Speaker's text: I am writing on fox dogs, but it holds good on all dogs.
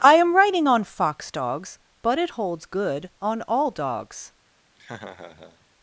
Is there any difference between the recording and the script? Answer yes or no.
no